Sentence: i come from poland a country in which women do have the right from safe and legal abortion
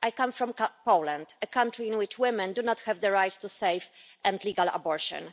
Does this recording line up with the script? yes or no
no